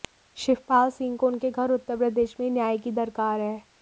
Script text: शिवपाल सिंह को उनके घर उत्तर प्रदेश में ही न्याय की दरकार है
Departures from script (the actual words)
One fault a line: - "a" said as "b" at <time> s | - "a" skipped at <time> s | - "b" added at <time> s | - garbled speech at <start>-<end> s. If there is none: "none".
none